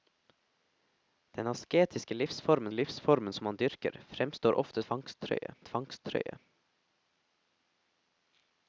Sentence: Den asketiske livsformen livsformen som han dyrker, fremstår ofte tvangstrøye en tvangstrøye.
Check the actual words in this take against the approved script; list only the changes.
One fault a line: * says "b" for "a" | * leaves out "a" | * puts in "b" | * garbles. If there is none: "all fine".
all fine